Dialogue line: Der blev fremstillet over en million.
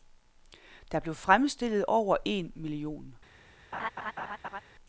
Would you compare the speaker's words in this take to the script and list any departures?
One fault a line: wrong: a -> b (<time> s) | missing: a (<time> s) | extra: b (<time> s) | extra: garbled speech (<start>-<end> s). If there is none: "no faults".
no faults